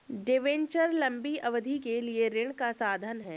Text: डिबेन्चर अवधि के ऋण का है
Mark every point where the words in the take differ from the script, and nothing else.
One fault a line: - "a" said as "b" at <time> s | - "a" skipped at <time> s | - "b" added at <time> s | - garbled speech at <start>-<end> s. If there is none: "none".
- "लंबी" added at 0.9 s
- "लिए" added at 2.0 s
- "साधन" added at 2.7 s